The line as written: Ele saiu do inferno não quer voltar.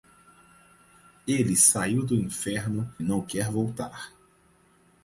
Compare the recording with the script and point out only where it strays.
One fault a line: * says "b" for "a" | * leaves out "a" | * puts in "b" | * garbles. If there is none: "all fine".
all fine